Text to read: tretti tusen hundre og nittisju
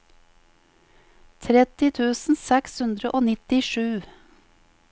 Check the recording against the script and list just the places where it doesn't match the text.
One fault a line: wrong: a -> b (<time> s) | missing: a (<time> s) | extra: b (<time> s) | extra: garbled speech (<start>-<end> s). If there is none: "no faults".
extra: seks (2.4 s)